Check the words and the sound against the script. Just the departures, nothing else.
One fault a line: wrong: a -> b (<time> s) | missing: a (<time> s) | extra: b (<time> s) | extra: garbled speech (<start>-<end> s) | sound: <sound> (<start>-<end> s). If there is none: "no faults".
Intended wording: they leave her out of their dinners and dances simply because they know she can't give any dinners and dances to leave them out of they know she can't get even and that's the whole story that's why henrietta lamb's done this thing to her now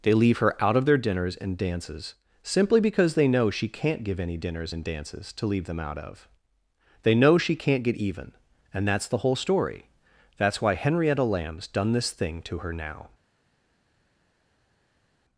no faults